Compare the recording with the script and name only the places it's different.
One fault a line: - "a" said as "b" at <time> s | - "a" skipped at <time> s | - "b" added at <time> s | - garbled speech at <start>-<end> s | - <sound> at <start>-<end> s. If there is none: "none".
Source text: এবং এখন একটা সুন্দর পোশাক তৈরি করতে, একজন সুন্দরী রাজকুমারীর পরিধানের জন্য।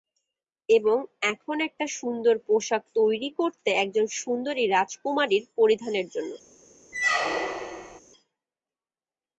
- squeak at 6.9-8.0 s